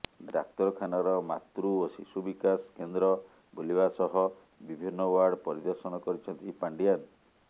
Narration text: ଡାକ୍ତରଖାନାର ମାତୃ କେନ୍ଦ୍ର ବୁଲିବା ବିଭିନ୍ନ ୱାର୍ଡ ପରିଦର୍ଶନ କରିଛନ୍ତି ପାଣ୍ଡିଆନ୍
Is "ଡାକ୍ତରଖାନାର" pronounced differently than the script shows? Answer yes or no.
no